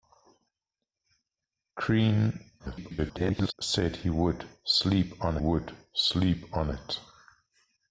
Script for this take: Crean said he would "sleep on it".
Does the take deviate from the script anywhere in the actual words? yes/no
yes